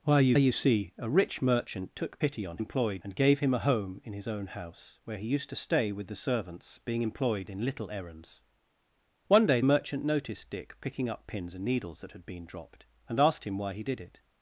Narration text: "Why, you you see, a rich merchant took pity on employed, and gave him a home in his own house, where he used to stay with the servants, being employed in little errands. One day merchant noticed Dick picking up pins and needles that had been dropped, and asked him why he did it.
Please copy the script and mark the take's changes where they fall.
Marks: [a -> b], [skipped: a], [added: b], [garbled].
"Why, you you see, a rich merchant took pity on employed, and gave him a home in his own house, where he used to stay with the servants, being employed in little errands. One day merchant noticed Dick picking up pins and needles that had been dropped, and asked him why he did it.